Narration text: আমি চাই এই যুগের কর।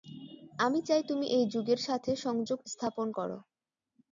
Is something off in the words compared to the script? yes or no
yes